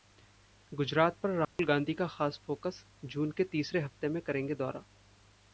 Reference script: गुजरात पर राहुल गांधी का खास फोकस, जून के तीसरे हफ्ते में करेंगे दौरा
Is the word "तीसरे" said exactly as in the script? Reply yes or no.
yes